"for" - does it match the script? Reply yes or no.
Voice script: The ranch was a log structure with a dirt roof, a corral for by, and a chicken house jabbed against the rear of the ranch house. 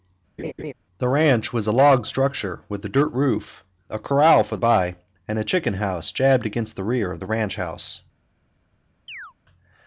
yes